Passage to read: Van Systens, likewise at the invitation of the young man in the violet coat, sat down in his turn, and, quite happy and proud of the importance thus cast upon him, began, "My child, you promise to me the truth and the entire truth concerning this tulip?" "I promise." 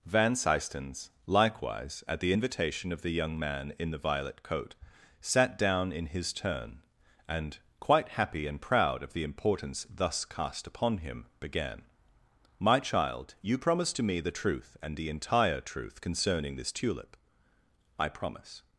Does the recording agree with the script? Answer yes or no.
yes